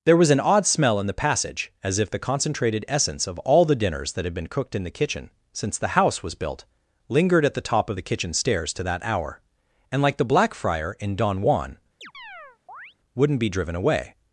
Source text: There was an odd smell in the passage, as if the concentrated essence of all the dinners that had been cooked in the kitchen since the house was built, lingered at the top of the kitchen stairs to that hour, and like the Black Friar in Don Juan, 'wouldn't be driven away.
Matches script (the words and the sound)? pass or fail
fail